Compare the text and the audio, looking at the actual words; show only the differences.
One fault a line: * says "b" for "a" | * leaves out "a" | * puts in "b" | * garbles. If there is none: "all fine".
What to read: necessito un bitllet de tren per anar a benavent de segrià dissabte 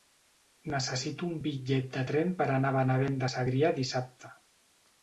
all fine